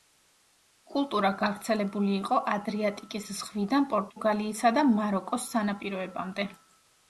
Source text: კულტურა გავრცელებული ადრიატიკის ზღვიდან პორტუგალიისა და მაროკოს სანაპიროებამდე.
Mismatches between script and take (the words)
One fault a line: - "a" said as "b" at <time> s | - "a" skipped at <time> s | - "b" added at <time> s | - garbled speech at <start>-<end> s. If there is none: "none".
- "იყო" added at 2.2 s